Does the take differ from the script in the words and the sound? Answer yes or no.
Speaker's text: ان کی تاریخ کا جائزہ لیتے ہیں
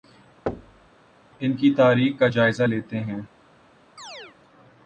yes